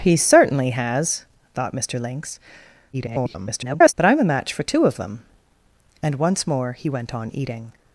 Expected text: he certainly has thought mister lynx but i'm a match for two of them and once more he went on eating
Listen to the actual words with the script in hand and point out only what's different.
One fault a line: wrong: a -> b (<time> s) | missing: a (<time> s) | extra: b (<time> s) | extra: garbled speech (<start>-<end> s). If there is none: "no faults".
extra: garbled speech (2.9-3.9 s)